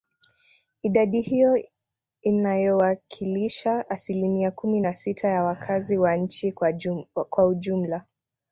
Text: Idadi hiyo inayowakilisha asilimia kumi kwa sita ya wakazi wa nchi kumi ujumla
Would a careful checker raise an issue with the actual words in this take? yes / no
yes